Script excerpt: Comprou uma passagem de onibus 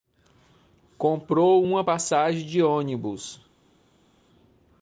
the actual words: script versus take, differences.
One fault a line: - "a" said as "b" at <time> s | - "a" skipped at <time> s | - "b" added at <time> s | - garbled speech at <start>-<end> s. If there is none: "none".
none